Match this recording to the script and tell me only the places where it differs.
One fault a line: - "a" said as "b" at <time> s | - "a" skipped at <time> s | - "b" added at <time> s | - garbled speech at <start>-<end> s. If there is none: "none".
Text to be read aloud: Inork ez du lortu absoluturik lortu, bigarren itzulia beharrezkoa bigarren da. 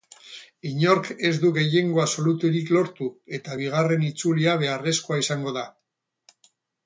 - "lortu" said as "gehiengo" at 1.6 s
- "eta" added at 3.4 s
- "bigarren" said as "izango" at 5.3 s